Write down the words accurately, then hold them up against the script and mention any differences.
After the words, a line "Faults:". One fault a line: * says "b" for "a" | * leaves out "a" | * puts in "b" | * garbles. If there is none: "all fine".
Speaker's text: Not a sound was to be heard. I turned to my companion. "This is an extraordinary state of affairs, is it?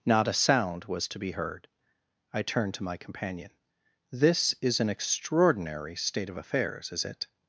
Not a sound was to be heard. I turned to my companion. "This is an extraordinary state of affairs, is it?
Faults:
all fine